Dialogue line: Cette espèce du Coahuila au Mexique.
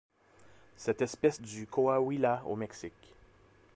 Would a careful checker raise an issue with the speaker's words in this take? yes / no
no